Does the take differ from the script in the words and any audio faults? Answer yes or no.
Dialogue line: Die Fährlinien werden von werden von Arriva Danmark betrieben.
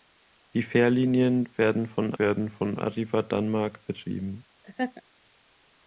yes